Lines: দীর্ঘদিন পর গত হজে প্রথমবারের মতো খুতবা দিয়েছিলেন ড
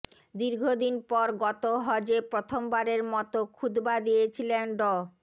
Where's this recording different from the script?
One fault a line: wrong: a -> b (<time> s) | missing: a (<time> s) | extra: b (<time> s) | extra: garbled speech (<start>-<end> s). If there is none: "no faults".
no faults